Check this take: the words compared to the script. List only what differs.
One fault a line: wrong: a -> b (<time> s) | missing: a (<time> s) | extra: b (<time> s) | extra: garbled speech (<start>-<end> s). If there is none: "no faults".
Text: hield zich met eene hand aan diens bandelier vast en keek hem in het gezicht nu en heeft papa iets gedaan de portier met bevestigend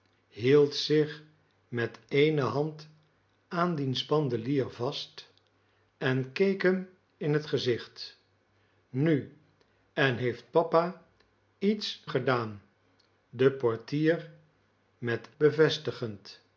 no faults